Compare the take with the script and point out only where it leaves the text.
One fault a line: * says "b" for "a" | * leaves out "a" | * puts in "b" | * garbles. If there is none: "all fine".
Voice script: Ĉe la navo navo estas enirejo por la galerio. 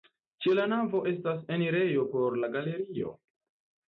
* leaves out "navo"